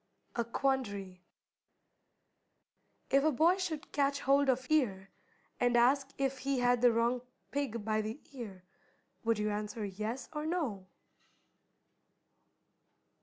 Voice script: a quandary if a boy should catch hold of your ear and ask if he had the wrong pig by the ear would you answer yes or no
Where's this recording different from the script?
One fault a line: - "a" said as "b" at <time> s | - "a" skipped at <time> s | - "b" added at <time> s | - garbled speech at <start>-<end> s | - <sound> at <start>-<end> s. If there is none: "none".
- "your" skipped at 4.7 s